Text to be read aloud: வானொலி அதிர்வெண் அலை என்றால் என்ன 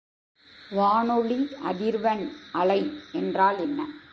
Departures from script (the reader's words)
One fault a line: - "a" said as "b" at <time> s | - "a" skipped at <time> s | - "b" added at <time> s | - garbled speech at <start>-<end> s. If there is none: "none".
none